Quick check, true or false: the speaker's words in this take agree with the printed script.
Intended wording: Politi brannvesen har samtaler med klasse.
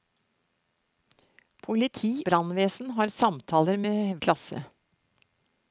true